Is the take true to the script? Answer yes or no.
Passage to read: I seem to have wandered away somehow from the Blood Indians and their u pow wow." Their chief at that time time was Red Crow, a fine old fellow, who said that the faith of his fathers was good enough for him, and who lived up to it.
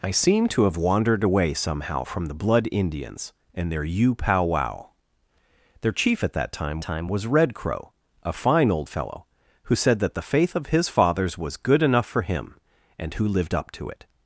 yes